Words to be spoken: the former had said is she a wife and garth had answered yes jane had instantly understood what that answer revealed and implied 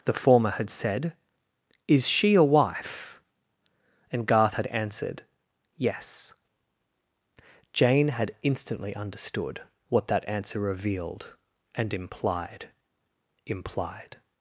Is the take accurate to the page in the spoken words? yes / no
no